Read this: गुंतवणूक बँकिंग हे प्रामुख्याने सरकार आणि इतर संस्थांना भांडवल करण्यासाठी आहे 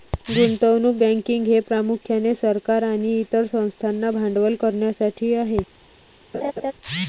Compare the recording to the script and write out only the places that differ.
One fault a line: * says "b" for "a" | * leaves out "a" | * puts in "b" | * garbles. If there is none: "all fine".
all fine